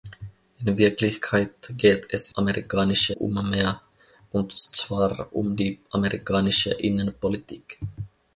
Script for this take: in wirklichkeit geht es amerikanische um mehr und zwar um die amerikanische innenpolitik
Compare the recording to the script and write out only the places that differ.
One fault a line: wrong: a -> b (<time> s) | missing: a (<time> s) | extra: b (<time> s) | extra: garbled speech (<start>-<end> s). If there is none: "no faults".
no faults